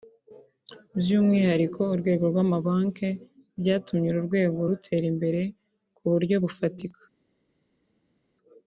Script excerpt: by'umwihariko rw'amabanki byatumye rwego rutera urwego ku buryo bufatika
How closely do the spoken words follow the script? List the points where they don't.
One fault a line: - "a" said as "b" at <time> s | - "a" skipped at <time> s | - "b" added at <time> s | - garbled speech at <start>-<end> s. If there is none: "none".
- "urwego" added at 1.9 s
- "uru" added at 4.1 s
- "urwego" said as "imbere" at 5.1 s